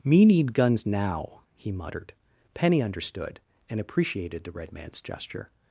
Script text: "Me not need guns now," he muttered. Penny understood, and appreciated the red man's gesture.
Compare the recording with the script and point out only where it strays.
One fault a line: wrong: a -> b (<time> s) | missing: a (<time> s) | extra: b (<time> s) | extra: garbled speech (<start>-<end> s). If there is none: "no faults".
missing: not (0.2 s)